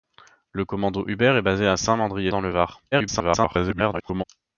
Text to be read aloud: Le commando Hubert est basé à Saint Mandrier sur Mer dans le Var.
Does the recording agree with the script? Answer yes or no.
no